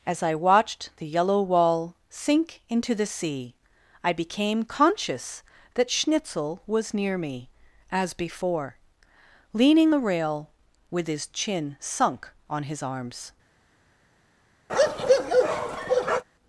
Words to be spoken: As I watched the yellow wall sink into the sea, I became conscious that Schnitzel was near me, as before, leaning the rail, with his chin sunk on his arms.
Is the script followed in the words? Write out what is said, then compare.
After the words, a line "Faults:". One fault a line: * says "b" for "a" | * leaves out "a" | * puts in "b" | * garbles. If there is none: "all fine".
As I watched the yellow wall sink into the sea, I became conscious that Schnitzel was near me, as before, leaning the rail, with his chin sunk on his arms.
Faults:
all fine